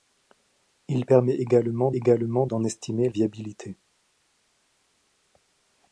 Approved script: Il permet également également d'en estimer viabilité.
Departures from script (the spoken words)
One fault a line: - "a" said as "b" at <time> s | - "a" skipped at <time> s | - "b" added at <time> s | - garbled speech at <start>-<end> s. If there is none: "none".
none